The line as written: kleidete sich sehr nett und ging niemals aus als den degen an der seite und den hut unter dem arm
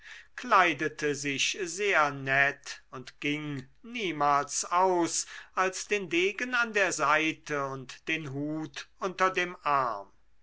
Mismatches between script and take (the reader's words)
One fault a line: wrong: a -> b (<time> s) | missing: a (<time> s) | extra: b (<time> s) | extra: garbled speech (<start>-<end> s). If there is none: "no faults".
no faults